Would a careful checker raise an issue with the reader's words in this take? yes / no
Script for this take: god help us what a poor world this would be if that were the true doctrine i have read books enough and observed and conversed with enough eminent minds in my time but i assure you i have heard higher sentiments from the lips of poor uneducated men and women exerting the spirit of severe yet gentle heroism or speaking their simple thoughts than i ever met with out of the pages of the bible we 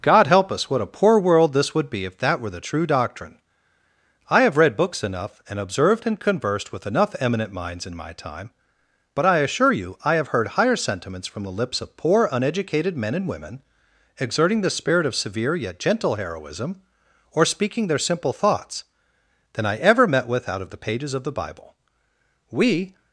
no